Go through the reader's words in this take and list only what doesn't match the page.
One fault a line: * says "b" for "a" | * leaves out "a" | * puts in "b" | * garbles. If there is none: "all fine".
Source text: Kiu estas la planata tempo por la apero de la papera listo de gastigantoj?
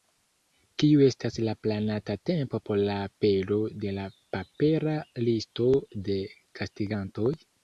all fine